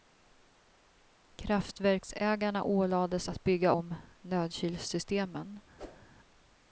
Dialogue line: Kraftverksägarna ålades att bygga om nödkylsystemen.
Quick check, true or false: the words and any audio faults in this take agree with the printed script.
false